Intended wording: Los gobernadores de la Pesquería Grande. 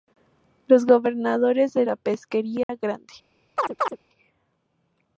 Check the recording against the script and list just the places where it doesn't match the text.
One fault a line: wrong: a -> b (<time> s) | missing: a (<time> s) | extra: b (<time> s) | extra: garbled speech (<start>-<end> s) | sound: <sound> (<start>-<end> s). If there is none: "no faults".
sound: dropout (2.6-2.7 s)
sound: chirp (3.6-4.0 s)